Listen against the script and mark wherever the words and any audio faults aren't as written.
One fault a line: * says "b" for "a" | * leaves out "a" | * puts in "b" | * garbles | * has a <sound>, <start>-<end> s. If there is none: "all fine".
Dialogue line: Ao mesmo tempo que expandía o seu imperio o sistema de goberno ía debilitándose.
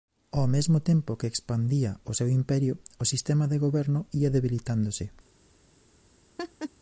* has a laugh, 6.4-6.7 s